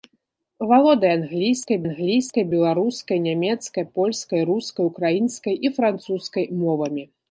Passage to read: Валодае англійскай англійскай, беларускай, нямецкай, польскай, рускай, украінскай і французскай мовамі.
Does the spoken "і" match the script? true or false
true